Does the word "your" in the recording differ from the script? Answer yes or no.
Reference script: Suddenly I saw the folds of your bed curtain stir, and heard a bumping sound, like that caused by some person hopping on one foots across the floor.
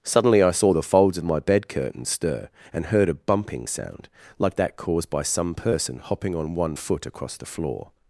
yes